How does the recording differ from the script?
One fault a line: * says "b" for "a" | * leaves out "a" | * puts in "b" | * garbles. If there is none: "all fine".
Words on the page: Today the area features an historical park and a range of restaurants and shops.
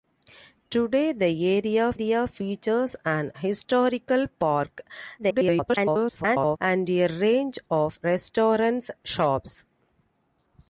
* puts in "area"
* garbles
* leaves out "and"